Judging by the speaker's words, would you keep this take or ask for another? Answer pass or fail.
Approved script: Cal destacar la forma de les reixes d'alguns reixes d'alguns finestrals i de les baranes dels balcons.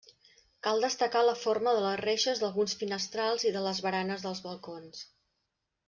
fail